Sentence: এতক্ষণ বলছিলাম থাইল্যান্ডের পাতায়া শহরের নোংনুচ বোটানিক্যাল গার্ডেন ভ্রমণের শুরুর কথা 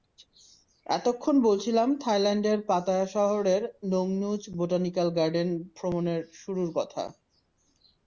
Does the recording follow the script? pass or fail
pass